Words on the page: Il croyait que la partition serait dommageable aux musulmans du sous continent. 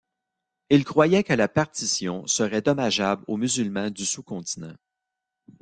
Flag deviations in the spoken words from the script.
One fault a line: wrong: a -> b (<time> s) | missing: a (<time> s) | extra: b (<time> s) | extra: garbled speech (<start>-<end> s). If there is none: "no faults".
no faults